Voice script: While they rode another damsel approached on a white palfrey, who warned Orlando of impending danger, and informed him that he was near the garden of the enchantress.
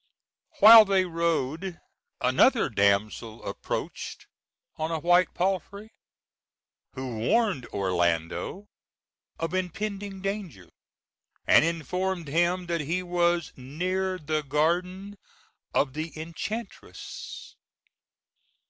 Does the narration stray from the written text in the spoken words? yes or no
no